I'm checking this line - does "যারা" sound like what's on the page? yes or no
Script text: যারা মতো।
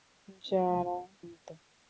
yes